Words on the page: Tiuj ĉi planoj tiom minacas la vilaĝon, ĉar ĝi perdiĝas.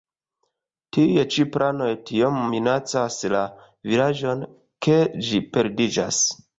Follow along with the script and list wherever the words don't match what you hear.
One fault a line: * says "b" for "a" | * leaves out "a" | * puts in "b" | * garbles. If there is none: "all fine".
* says "ke" for "ĉar"